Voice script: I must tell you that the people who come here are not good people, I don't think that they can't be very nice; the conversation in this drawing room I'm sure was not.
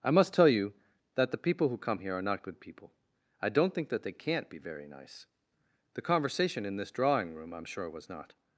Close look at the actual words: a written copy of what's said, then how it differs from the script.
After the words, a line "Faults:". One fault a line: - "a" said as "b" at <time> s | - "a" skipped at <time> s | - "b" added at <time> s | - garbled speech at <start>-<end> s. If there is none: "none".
I must tell you that the people who come here are not good people, I don't think that they can't be very nice; the conversation in this drawing room I'm sure was not.
Faults:
none